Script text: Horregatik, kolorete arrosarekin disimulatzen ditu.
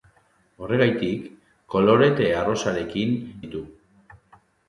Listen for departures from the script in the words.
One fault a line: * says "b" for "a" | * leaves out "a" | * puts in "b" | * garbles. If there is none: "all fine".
* leaves out "disimulatzen"